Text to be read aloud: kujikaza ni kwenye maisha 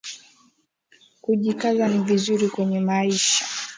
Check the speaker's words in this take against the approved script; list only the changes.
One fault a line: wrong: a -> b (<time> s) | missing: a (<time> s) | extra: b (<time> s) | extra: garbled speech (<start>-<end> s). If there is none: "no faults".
extra: vizuri (2.0 s)